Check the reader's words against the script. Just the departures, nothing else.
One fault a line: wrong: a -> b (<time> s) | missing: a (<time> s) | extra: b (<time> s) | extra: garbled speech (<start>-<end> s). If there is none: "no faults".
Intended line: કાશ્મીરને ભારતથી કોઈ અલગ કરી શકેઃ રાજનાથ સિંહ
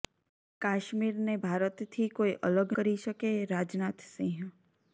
no faults